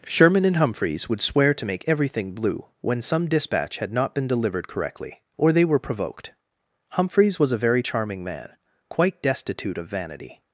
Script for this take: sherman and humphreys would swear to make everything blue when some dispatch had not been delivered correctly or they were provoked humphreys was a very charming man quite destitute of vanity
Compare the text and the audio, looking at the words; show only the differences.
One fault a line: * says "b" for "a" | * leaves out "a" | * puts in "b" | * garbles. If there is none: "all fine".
all fine